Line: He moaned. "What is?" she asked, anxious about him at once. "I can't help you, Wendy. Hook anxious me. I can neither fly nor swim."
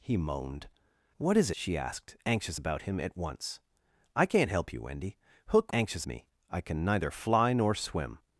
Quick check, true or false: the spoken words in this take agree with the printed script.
true